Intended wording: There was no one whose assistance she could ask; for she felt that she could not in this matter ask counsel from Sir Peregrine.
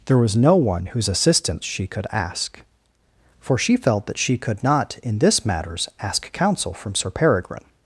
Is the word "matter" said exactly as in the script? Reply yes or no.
no